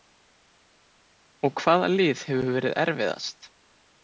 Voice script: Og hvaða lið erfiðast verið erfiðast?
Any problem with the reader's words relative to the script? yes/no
yes